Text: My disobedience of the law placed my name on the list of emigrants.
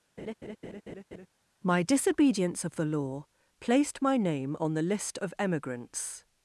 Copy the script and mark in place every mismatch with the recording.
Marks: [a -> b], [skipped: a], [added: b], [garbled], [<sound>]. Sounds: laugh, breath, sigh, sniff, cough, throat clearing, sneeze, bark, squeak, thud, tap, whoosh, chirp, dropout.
[laugh] My disobedience of the law placed my name on the list of emigrants.